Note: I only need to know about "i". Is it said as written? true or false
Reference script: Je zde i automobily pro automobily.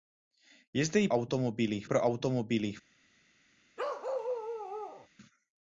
true